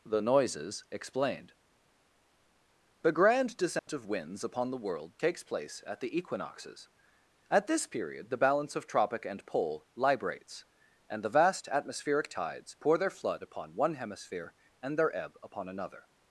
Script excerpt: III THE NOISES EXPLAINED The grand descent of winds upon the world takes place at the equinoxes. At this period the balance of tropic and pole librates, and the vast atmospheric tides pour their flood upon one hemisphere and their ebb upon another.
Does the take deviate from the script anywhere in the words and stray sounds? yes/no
yes